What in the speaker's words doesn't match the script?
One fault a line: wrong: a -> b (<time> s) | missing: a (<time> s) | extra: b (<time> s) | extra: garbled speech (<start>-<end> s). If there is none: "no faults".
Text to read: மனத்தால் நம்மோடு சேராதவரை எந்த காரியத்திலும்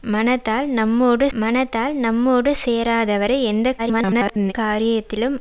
extra: மனத்தால் நம்மோடு (1.3 s)
extra: garbled speech (3.8-4.5 s)